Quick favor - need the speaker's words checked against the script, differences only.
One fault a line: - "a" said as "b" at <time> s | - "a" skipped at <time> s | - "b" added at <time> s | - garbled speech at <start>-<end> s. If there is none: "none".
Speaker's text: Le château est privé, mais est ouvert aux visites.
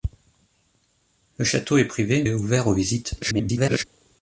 - "mais" skipped at 2.2 s
- garbled speech at 3.2-3.8 s